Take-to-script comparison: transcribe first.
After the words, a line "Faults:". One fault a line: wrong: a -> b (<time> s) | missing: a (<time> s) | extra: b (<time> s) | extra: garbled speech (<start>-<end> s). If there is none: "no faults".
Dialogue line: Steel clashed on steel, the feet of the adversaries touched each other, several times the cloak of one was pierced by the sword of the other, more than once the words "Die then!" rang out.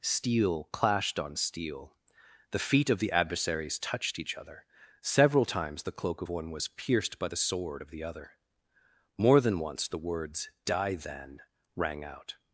Steel clashed on steel, the feet of the adversaries touched each other, several times the cloak of one was pierced by the sword of the other, more than once the words "Die then!" rang out.
Faults:
no faults